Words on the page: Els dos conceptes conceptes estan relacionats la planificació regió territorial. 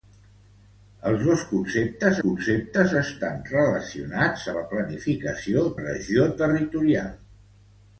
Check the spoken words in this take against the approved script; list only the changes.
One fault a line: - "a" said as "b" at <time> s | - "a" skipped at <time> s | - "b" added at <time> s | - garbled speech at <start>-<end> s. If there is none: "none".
none